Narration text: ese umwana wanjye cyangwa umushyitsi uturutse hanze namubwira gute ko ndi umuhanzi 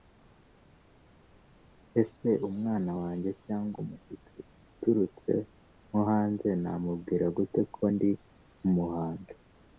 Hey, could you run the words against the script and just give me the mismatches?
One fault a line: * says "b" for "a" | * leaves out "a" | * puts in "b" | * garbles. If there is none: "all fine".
* puts in "nko"